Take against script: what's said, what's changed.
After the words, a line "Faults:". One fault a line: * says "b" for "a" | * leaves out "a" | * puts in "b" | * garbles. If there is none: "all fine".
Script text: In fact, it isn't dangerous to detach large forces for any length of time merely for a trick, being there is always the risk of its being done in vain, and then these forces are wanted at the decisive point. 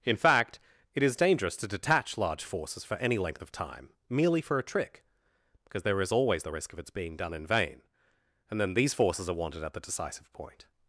In fact, it is dangerous to detach large forces for any length of time merely for a trick, because there is always the risk of its being done in vain, and then these forces are wanted at the decisive point.
Faults:
* says "is" for "isn't"
* says "because" for "being"